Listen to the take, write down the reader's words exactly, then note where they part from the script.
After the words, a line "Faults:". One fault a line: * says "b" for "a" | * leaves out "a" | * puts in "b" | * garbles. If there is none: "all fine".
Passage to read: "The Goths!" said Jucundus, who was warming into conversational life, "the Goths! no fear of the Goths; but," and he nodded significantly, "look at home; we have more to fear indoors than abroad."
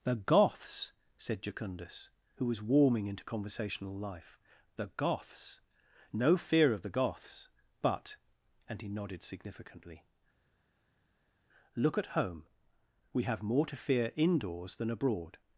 "The Goths!" said Jucundus, who was warming into conversational life, "the Goths! no fear of the Goths; but," and he nodded significantly, "look at home; we have more to fear indoors than abroad."
Faults:
all fine